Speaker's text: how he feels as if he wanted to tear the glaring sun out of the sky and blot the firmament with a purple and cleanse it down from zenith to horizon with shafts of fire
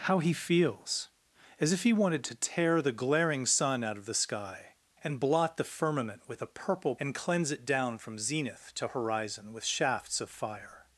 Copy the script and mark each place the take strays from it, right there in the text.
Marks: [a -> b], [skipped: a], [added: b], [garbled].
how he feels as if he wanted to tear the glaring sun out of the sky and blot the firmament with a purple and cleanse it down from zenith to horizon with shafts of fire